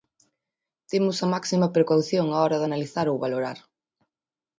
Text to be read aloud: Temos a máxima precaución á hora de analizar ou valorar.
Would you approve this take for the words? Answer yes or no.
yes